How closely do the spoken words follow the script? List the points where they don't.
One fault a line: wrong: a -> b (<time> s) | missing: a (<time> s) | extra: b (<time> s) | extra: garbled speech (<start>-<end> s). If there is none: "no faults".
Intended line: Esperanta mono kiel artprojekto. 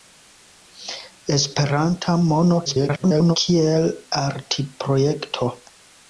extra: garbled speech (2.7-3.4 s)